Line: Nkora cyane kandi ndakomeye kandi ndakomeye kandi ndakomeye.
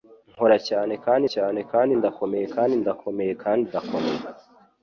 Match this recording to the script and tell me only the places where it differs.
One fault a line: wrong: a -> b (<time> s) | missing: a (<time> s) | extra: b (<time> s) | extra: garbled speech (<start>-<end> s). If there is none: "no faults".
extra: cyane kandi (1.3 s)